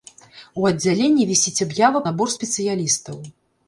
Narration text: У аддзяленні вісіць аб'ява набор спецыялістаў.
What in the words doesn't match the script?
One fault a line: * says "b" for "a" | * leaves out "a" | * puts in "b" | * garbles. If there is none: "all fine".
all fine